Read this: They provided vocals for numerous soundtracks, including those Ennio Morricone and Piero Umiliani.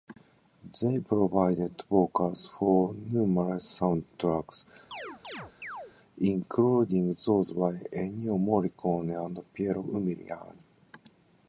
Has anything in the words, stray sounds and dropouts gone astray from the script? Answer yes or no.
yes